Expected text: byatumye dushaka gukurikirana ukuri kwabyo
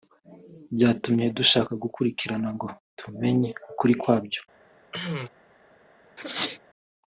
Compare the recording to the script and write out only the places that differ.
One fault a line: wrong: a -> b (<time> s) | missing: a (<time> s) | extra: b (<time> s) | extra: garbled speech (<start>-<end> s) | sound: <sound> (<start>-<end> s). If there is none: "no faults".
extra: ngo tumenye (2.5 s)
sound: cough (4.9-5.3 s)
sound: sneeze (6.2-6.6 s)